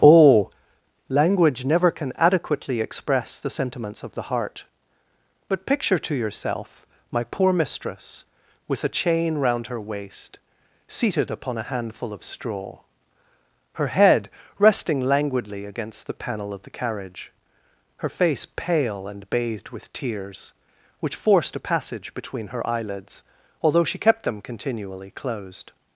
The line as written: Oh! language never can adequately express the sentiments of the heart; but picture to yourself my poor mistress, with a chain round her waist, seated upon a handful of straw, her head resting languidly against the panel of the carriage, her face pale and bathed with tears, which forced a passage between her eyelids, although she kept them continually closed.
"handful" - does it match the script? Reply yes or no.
yes